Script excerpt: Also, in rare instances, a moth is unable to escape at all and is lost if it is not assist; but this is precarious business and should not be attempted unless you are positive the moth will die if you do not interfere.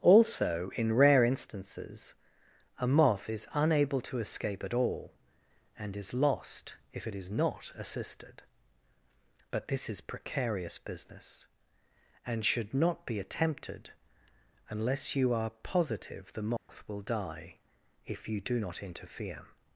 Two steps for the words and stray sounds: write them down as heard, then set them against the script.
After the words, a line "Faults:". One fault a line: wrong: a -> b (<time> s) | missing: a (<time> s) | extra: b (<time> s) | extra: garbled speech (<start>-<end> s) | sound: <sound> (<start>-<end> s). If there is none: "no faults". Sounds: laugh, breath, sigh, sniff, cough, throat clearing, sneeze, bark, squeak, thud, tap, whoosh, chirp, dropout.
Also, in rare instances, a moth is unable to escape at all and is lost if it is not assisted; but this is precarious business and should not be attempted unless you are positive the moth will die if you do not interfere.
Faults:
wrong: assist -> assisted (7.8 s)
sound: dropout (16.6-16.7 s)